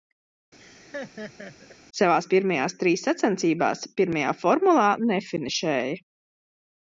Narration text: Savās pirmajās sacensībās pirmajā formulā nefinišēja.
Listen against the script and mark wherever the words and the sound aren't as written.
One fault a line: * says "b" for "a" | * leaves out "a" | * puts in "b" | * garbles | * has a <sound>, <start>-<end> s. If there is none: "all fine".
* has a laugh, 0.6-1.8 s
* puts in "trīs"